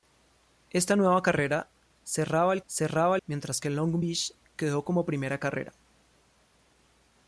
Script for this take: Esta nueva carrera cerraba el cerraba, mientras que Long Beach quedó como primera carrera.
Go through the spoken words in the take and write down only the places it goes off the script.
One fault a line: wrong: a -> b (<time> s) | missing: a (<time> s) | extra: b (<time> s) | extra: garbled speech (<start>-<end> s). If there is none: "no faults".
no faults